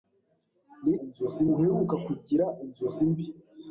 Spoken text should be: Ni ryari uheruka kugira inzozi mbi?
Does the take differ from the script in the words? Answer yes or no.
yes